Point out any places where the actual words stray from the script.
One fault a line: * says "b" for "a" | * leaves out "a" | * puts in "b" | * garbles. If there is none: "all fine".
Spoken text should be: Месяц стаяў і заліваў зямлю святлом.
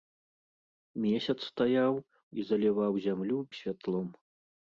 all fine